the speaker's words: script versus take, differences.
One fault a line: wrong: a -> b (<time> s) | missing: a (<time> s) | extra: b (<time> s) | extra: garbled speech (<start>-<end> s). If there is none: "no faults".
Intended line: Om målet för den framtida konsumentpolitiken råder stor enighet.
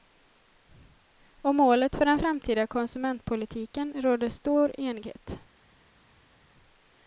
no faults